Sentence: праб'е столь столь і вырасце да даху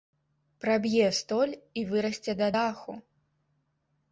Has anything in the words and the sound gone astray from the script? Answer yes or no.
yes